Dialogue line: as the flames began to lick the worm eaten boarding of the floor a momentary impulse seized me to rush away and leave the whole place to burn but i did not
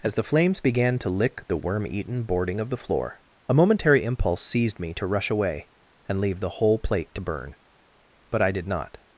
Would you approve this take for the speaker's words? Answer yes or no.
no